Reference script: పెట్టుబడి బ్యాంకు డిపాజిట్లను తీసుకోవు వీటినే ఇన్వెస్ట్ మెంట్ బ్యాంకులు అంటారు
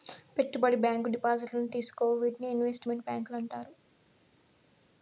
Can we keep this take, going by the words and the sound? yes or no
yes